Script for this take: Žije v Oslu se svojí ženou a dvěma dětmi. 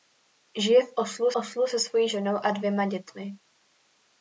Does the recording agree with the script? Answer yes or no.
no